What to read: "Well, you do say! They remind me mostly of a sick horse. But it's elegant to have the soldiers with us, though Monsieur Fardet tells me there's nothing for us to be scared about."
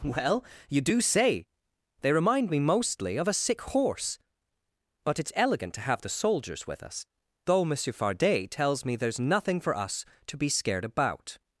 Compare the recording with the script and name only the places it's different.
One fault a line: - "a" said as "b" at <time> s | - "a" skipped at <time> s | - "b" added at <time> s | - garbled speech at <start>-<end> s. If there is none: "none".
none